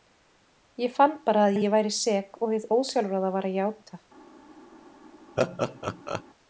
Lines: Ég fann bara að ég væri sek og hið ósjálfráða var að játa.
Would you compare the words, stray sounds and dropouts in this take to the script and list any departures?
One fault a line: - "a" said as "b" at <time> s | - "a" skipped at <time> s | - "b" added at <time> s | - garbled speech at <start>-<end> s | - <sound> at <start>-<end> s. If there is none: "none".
- "að" added at 1.6 s
- laugh at 5.4-6.2 s